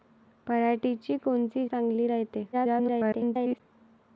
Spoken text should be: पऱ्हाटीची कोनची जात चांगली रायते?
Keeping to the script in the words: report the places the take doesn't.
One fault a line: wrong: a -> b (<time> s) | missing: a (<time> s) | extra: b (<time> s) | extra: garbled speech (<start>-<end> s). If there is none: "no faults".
missing: जात (1.7 s)
extra: garbled speech (2.5-3.6 s)